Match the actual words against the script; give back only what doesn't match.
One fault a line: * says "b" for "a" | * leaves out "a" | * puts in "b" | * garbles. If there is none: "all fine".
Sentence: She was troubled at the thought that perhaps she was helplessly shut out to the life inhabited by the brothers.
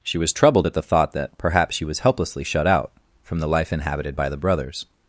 * says "from" for "to"